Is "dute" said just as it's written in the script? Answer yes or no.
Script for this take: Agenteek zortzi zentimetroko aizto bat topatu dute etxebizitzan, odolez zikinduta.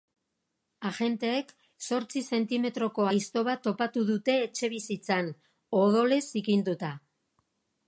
yes